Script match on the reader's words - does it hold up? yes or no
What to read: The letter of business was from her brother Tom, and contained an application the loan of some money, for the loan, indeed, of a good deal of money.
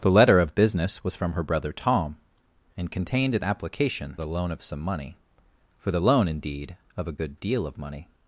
yes